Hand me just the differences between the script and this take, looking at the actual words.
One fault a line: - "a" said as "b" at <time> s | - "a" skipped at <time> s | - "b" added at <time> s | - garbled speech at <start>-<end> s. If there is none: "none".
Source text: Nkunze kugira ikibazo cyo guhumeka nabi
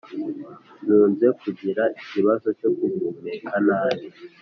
none